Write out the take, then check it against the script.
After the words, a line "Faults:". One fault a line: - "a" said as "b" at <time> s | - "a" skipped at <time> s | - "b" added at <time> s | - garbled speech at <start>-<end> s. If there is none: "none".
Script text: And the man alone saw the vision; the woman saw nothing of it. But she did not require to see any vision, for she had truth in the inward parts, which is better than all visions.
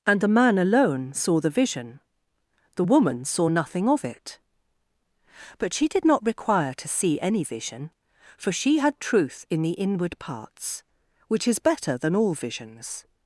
And the man alone saw the vision; the woman saw nothing of it. But she did not require to see any vision, for she had truth in the inward parts, which is better than all visions.
Faults:
none